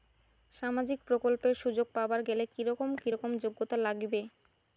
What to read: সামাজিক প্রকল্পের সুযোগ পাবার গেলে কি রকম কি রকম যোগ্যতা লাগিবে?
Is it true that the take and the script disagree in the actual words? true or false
false